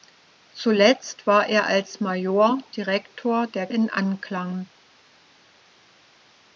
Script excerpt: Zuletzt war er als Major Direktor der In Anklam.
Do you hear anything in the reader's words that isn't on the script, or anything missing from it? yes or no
no